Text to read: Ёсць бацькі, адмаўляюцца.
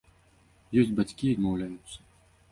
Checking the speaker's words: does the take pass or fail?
pass